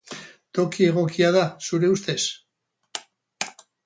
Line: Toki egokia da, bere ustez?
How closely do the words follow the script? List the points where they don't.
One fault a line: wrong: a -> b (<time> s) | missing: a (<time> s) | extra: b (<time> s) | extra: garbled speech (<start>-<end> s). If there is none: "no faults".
wrong: bere -> zure (1.7 s)